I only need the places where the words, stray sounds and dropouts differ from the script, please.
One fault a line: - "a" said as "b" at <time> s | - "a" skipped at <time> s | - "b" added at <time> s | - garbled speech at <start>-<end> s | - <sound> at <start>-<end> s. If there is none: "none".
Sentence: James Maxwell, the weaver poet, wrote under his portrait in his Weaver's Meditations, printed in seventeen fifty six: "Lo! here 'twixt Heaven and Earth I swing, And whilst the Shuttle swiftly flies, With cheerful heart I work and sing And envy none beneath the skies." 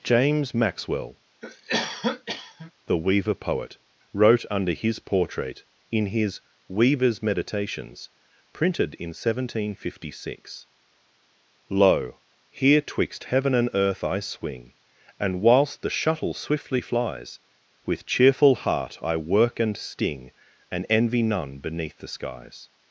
- cough at 1.4-2.7 s
- "sing" said as "sting" at 19.8 s